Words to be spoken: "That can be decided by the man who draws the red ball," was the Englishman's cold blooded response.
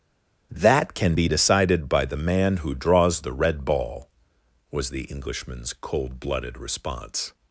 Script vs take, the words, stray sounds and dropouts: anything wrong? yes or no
no